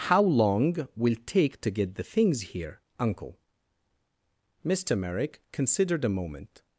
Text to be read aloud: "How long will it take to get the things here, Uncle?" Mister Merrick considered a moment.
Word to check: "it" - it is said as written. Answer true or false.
false